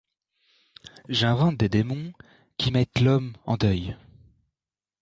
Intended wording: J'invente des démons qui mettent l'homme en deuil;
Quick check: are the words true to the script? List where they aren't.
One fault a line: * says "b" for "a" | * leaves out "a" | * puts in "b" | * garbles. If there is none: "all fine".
all fine